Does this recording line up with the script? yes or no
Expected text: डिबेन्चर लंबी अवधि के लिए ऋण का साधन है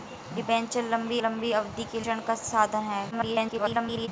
no